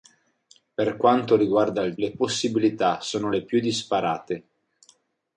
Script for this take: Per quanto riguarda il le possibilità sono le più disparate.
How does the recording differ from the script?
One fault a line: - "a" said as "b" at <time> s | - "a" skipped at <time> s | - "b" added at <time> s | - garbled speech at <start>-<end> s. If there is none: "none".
none